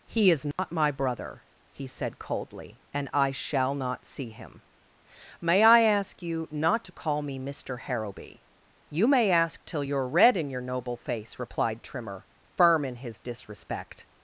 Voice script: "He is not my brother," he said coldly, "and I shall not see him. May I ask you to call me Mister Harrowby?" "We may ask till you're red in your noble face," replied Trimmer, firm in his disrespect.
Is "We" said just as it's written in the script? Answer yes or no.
no